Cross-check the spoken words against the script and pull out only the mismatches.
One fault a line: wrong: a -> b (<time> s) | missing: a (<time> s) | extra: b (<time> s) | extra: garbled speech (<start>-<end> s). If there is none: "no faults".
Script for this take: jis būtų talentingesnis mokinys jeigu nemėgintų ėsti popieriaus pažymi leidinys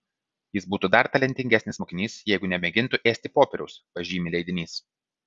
extra: dar (0.9 s)